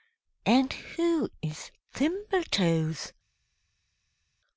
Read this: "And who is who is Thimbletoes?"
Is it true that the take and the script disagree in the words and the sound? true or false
true